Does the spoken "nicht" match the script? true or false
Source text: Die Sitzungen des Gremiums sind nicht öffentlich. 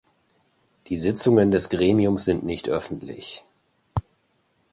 true